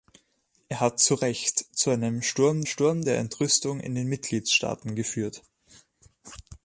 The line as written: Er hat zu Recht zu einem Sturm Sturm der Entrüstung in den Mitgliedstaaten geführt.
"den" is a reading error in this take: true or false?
false